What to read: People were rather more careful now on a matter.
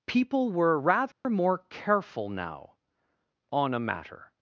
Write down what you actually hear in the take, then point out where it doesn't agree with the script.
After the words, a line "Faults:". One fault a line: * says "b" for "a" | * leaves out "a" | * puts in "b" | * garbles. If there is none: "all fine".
People were rather more careful now on a matter.
Faults:
all fine